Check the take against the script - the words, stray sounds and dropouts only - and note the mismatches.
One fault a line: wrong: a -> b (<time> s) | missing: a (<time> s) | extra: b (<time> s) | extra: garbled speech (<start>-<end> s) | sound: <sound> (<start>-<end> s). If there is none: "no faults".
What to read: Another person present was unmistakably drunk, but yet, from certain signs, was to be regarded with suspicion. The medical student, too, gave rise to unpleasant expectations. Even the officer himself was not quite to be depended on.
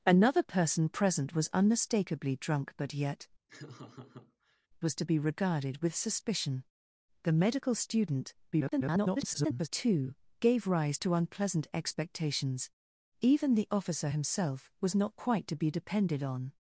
missing: from certain signs (3.3 s)
sound: laugh (3.5-4.7 s)
extra: garbled speech (8.5-9.7 s)